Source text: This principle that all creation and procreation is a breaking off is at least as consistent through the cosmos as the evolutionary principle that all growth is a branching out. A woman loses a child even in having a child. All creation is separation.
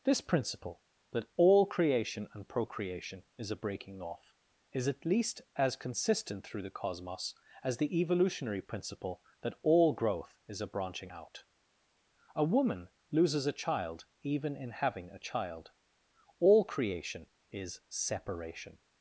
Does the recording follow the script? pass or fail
pass